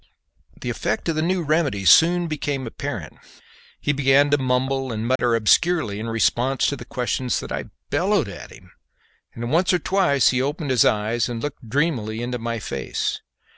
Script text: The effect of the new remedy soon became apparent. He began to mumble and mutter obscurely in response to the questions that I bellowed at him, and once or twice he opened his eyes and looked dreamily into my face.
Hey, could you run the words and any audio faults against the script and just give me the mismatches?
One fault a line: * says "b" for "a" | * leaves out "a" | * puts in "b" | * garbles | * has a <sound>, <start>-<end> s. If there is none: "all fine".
* has a dropout, 5.2-5.2 s